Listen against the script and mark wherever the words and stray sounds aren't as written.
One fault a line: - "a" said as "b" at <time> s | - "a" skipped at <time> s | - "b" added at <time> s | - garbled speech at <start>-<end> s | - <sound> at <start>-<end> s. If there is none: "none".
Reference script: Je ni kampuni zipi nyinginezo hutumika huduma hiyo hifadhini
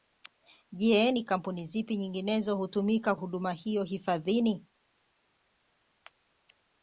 none